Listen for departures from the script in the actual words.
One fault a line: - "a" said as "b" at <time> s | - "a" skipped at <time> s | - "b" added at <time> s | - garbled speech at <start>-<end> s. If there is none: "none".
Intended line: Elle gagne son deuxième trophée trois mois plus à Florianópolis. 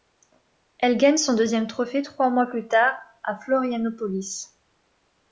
- "tard" added at 2.7 s